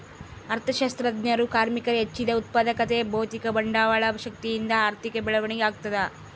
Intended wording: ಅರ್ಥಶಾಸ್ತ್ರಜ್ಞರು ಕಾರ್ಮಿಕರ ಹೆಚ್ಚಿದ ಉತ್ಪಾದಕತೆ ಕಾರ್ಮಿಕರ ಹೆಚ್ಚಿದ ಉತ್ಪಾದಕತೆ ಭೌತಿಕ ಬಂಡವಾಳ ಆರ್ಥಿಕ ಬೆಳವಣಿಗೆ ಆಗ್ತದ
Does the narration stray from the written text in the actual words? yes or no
yes